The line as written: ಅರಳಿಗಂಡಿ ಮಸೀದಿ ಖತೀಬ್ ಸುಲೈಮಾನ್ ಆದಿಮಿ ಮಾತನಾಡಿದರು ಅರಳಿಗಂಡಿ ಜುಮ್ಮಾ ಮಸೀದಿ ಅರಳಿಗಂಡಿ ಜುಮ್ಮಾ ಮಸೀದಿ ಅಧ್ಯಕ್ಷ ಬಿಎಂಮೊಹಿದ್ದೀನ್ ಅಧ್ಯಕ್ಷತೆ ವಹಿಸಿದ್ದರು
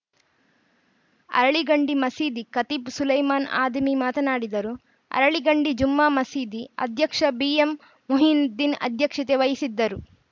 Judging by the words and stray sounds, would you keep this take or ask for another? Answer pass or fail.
fail